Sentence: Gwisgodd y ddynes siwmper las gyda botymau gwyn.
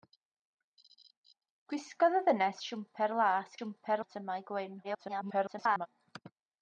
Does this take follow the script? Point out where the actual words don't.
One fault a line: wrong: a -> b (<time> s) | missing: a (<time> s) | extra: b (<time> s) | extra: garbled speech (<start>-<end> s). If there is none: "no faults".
wrong: gyda -> siwmper (3.6 s)
extra: garbled speech (4.8-5.9 s)